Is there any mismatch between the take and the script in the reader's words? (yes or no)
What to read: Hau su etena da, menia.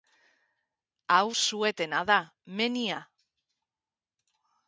no